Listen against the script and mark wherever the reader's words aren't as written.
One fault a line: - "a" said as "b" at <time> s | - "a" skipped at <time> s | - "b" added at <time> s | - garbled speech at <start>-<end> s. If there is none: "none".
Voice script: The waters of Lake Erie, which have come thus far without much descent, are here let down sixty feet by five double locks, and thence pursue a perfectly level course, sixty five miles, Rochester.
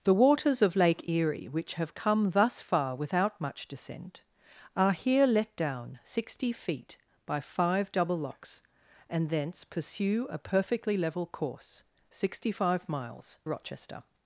none